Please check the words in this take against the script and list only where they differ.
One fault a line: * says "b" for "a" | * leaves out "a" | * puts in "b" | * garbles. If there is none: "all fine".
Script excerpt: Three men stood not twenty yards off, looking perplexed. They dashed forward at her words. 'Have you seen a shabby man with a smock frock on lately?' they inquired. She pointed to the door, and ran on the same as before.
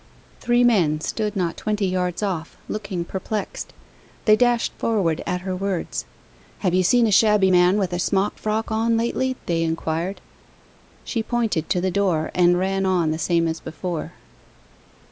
all fine